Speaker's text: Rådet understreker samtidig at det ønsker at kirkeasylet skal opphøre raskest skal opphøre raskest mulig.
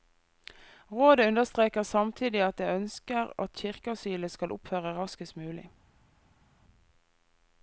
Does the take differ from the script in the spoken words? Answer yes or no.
yes